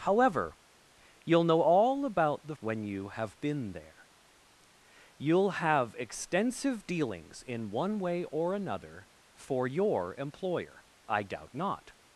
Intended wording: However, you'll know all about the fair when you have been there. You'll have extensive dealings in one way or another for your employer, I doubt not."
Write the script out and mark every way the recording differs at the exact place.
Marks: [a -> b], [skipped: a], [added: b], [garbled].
However, you'll know all about the [skipped: fair] when you have been there. You'll have extensive dealings in one way or another for your employer, I doubt not."